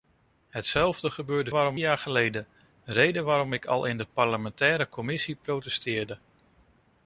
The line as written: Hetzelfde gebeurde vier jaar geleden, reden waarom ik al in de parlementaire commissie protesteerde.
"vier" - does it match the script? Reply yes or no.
no